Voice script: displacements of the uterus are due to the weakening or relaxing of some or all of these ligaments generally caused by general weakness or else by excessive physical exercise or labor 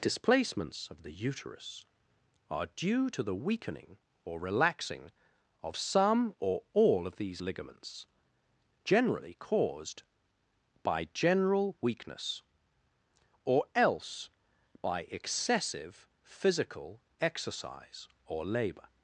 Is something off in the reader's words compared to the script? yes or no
no